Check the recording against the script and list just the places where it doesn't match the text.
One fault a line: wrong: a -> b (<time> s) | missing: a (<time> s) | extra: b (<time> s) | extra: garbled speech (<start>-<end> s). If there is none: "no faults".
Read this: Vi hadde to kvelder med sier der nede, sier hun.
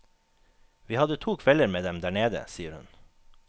wrong: sier -> dem (1.8 s)